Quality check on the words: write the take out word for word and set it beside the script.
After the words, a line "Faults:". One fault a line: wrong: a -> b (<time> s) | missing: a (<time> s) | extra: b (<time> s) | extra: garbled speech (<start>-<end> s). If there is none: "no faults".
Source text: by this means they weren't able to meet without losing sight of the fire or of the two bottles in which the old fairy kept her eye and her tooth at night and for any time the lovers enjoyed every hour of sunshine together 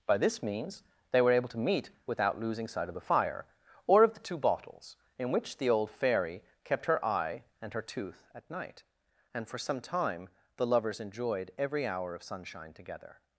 by this means they were able to meet without losing sight of the fire or of the two bottles in which the old fairy kept her eye and her tooth at night and for some time the lovers enjoyed every hour of sunshine together
Faults:
wrong: weren't -> were (1.2 s)
wrong: any -> some (9.6 s)